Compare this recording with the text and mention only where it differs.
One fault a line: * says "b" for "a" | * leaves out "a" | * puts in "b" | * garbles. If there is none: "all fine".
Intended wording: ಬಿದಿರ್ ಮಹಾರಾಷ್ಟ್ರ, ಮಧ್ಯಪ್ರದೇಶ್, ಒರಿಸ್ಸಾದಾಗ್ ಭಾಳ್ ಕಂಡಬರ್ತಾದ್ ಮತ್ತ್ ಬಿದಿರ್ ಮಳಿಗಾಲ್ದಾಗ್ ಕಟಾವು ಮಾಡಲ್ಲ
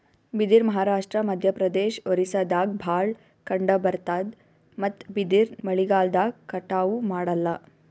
all fine